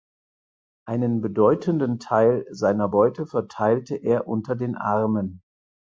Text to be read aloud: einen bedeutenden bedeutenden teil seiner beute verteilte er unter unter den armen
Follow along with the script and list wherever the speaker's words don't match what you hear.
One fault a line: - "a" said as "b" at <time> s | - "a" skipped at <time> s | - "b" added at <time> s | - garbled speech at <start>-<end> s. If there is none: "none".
- "bedeutenden" skipped at 2.0 s
- "unter" skipped at 4.5 s